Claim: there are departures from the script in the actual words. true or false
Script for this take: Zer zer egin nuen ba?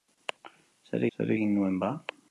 false